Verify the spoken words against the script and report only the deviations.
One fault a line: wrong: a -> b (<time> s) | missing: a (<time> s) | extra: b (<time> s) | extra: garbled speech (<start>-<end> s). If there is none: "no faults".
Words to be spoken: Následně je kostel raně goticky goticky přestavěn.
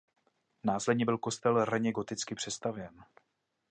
wrong: je -> byl (1.0 s)
missing: goticky (2.3 s)